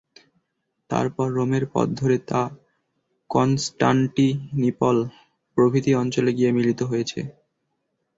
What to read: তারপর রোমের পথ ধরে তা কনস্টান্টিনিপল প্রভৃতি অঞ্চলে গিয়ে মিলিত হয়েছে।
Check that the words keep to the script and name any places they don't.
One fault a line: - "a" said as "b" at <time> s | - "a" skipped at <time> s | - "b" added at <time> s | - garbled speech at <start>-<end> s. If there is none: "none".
none